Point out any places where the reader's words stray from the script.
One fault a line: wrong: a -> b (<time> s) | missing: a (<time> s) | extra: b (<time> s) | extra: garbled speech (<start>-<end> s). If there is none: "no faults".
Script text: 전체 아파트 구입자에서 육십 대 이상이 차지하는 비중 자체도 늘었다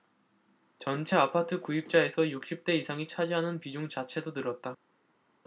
no faults